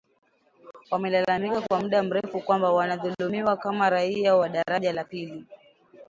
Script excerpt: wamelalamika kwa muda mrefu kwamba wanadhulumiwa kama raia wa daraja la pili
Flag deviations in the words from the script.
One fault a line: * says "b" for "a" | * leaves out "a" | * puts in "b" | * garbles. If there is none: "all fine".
all fine